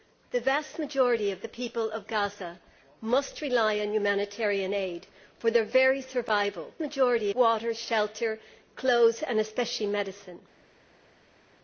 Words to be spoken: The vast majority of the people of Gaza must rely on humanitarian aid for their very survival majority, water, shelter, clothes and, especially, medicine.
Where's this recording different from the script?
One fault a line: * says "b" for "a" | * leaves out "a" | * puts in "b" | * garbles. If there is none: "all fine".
all fine